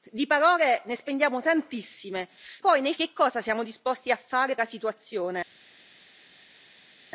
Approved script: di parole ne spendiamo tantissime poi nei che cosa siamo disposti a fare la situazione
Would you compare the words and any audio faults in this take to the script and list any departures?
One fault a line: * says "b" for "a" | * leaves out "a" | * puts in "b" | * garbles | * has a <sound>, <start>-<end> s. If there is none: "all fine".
all fine